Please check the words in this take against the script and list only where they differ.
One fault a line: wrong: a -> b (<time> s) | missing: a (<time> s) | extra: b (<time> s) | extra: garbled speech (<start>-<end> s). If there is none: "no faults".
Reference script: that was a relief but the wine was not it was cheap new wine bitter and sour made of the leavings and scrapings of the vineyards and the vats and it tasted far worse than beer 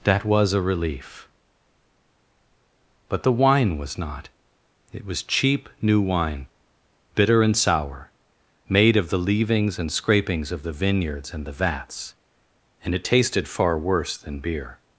no faults